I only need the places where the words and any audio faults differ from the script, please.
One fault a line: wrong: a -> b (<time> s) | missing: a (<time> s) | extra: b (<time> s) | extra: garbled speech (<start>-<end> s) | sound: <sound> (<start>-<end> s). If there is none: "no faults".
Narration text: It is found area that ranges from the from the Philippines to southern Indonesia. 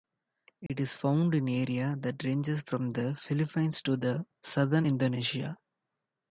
sound: dropout (0.7-0.7 s)
extra: in (1.4 s)
missing: from the (3.1 s)
extra: the (4.0 s)